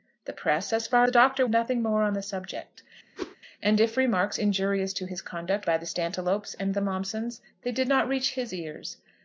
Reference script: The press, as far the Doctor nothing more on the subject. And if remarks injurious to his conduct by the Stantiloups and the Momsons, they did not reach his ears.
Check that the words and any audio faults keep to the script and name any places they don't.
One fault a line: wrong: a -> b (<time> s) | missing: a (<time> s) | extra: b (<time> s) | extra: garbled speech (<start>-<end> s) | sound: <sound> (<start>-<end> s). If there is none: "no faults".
sound: whoosh (3.2-3.4 s)